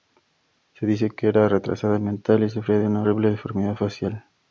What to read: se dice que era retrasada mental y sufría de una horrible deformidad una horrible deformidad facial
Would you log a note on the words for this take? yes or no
yes